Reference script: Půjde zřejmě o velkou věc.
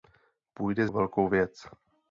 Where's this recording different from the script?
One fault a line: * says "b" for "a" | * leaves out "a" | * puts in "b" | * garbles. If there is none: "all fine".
* leaves out "zřejmě"